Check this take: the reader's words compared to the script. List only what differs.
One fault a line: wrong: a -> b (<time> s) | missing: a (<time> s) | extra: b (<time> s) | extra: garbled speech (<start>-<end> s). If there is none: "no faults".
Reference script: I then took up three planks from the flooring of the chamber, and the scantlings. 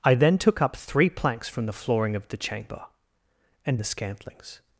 no faults